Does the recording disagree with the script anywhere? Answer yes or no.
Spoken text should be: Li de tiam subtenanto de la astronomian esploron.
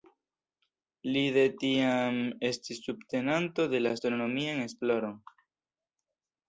yes